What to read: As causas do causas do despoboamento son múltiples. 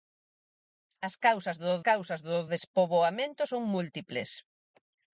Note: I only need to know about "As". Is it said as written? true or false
true